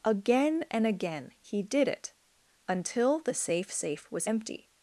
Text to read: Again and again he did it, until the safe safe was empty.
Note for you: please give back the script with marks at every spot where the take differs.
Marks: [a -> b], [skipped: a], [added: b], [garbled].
Again and again he did it, until the safe safe was empty.